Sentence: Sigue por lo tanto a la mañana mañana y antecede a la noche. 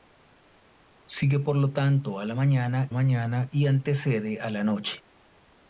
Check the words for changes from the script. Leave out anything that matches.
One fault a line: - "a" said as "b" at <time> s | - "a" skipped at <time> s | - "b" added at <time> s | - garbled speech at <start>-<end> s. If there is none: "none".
none